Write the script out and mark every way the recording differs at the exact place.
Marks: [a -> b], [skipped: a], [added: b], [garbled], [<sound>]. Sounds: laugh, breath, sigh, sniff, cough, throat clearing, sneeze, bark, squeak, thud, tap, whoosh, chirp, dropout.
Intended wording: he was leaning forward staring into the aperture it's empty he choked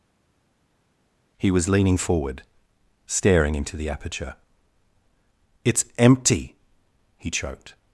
he was leaning forward staring into the aperture it's empty he choked